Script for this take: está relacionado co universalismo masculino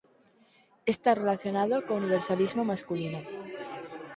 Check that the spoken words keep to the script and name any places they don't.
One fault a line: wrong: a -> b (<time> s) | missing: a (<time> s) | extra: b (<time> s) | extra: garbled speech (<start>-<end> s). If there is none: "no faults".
no faults